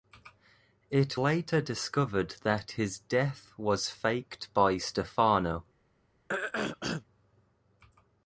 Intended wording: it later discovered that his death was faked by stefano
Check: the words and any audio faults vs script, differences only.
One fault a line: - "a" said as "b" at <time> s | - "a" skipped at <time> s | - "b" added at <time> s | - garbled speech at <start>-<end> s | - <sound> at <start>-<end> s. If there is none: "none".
- throat clearing at 6.3-7.0 s